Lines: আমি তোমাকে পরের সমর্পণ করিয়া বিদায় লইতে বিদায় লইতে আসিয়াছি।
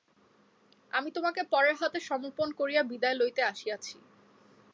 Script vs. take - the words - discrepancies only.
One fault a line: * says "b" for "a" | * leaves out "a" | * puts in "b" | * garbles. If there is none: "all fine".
* puts in "হাতে"
* leaves out "বিদায় লইতে"